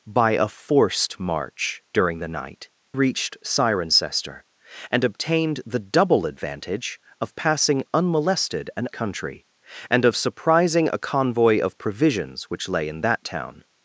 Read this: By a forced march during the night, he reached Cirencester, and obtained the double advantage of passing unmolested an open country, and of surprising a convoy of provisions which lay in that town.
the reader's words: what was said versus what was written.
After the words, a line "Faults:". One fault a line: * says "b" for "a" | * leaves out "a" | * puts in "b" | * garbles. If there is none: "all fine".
By a forced march during the night, reached Cirencester, and obtained the double advantage of passing unmolested an country, and of surprising a convoy of provisions which lay in that town.
Faults:
* leaves out "he"
* leaves out "open"